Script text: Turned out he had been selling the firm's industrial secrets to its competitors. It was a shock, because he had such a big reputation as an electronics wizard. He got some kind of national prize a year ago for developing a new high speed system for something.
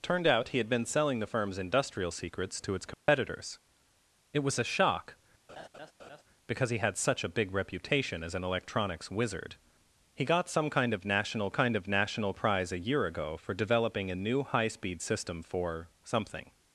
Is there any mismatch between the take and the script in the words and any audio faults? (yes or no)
yes